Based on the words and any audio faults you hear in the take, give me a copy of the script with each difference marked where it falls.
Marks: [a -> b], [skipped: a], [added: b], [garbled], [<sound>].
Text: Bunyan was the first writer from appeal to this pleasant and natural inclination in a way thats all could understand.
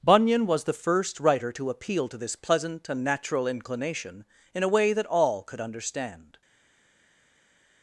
Bunyan was the first writer [from -> to] appeal to this pleasant and natural inclination in a way [thats -> that] all could understand.